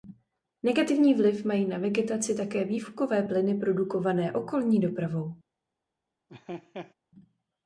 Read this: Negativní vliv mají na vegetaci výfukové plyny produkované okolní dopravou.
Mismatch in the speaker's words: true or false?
true